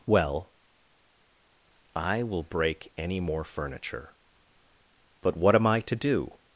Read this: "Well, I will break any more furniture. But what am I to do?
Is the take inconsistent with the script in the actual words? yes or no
no